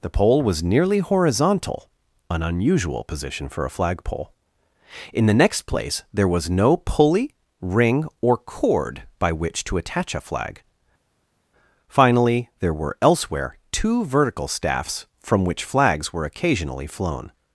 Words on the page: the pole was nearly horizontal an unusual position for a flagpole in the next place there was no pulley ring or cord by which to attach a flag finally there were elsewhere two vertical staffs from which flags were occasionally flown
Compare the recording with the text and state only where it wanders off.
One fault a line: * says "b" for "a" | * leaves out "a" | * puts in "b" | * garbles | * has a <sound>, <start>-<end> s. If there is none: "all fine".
all fine